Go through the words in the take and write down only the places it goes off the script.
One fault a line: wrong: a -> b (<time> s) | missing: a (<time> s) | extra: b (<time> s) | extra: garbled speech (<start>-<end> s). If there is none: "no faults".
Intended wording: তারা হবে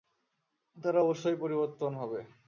extra: অবশ্যই পরিবর্তন (1.0 s)